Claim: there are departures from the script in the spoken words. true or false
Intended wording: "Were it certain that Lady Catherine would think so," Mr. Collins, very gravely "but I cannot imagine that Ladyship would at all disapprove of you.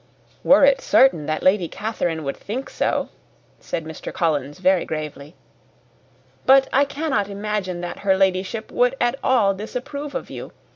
true